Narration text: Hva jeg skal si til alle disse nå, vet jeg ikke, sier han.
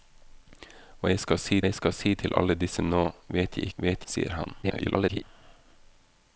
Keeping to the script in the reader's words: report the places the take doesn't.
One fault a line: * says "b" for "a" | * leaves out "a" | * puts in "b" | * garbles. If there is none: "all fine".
* puts in "jeg skal si"
* says "vet" for "ikke"
* garbles